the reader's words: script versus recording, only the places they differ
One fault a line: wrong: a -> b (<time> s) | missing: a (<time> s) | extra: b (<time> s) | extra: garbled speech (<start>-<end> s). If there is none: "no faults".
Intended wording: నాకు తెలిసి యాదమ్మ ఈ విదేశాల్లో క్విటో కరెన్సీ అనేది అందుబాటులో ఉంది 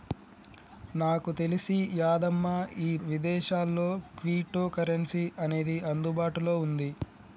no faults